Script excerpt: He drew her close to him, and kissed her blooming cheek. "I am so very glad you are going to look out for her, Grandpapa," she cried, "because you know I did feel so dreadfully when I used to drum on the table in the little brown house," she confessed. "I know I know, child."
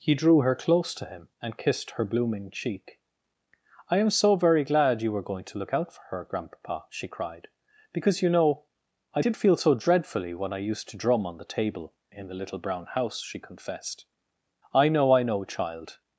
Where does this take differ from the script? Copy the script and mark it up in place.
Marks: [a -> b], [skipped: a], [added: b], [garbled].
He drew her close to him, and kissed her blooming cheek. "I am so very glad you [are -> were] going to look out for her, Grandpapa," she cried, "because you know I did feel so dreadfully when I used to drum on the table in the little brown house," she confessed. "I know I know, child."